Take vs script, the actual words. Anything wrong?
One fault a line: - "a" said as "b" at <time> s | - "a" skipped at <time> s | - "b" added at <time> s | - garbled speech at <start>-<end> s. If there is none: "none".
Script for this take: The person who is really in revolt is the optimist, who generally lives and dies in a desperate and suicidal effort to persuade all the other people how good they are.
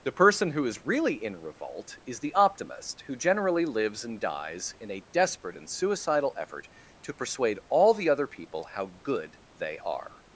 none